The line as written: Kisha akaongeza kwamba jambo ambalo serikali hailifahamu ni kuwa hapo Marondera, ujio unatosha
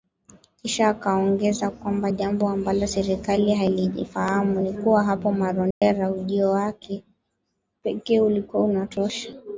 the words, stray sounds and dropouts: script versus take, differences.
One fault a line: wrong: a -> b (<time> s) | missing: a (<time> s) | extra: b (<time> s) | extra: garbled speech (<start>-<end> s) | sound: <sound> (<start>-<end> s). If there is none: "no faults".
sound: dropout (5.7-5.8 s)
extra: wake pekee ulikuwa (6.5 s)